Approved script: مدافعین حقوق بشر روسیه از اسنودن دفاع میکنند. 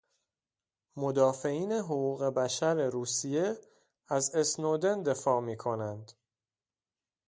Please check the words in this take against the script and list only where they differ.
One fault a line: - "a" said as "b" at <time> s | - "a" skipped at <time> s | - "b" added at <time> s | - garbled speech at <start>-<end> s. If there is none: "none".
none